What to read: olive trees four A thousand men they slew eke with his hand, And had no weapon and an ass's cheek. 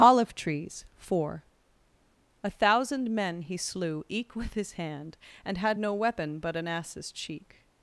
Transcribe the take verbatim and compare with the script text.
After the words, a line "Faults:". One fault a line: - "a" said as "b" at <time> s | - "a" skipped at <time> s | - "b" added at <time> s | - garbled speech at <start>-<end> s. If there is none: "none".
olive trees four A thousand men he slew eke with his hand, And had no weapon but an ass's cheek.
Faults:
- "they" said as "he" at 3.4 s
- "and" said as "but" at 6.4 s